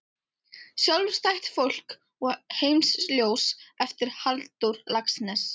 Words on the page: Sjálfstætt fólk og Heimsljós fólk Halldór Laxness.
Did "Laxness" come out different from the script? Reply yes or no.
no